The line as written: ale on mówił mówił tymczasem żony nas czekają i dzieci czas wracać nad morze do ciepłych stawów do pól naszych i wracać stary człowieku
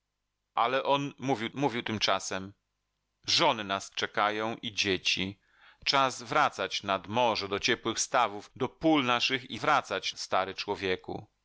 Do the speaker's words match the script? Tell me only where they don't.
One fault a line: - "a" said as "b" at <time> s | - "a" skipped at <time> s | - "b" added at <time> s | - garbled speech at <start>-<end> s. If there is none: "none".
none